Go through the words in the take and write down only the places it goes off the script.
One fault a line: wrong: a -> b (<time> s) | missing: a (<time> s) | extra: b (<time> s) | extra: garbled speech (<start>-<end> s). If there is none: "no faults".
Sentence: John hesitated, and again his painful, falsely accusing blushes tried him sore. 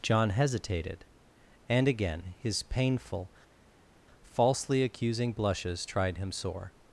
no faults